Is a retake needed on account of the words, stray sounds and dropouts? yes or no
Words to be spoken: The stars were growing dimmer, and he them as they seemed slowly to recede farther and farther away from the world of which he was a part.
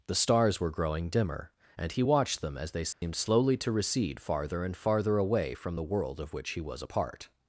yes